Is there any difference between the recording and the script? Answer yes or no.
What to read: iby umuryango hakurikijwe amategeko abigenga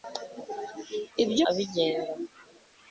yes